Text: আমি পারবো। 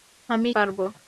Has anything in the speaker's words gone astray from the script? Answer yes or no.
no